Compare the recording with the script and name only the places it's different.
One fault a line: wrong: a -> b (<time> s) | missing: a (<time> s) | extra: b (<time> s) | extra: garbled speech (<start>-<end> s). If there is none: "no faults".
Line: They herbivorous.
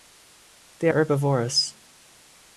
no faults